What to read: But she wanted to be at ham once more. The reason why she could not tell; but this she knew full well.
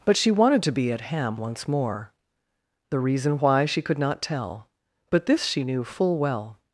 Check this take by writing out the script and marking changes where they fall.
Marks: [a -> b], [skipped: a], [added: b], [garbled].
But she wanted to be at ham once more. The reason why she could not tell; but this she knew full well.